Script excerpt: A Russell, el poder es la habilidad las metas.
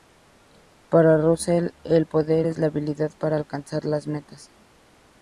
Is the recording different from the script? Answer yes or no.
yes